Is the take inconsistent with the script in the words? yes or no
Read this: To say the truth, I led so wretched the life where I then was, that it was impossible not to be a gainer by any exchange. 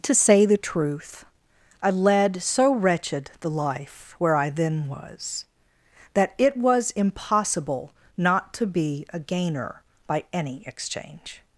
no